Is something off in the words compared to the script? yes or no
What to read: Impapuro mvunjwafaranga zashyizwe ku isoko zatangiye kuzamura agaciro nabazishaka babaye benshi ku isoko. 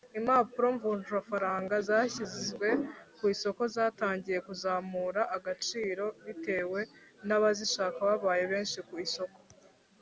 yes